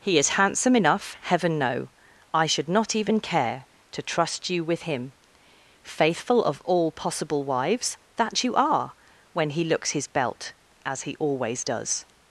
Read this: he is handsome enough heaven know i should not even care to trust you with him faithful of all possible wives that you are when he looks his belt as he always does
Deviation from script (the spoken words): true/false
false